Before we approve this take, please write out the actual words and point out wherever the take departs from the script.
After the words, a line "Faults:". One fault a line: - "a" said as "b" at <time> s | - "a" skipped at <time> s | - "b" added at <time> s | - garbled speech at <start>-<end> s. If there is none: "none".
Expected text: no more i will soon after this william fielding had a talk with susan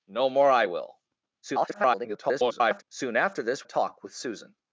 no more i will [garbled] soon after this a talk with susan
Faults:
- garbled speech at 1.4-2.8 s
- "william fielding had" skipped at 3.7 s